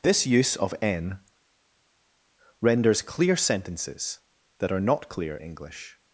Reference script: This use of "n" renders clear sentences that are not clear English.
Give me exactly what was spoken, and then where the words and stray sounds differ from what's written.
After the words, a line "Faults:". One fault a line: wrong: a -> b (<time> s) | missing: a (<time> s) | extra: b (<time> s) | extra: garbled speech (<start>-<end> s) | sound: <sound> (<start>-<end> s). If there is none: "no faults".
This use of "n" renders clear sentences that are not clear English.
Faults:
no faults